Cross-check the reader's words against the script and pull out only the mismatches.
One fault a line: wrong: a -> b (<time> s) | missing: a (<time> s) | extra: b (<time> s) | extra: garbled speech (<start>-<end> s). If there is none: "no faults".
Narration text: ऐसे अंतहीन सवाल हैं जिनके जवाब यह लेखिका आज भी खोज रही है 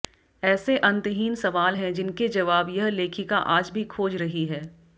no faults